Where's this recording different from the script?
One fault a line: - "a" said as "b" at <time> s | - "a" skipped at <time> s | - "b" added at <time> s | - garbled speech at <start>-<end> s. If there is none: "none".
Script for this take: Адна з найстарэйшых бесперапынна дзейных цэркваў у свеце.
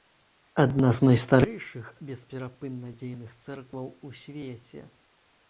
none